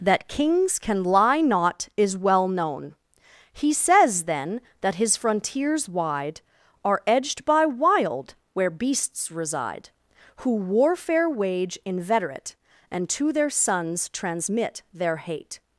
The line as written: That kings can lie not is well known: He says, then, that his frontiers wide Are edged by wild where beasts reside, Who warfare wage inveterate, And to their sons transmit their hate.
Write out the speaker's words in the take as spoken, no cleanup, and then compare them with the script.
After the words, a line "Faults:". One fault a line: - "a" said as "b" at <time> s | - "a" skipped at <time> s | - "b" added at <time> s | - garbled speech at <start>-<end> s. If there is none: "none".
That kings can lie not is well known: He says, then, that his frontiers wide Are edged by wild where beasts reside, Who warfare wage inveterate, And to their sons transmit their hate.
Faults:
none